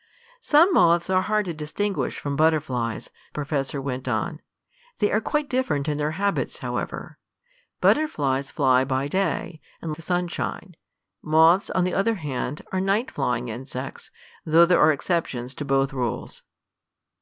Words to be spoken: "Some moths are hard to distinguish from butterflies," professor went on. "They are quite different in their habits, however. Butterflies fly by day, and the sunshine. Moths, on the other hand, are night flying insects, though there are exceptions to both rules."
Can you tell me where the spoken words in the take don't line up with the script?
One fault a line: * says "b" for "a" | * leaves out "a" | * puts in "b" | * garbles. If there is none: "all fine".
all fine